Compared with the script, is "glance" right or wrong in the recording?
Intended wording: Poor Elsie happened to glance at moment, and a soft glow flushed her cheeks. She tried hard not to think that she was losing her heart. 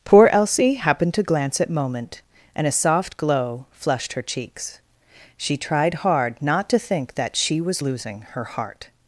right